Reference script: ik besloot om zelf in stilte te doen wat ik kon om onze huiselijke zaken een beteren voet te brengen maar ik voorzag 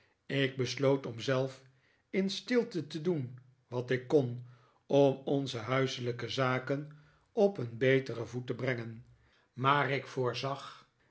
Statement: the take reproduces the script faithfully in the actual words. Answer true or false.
false